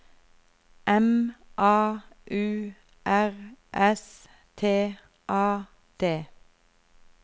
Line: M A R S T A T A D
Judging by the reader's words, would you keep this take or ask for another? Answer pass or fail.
fail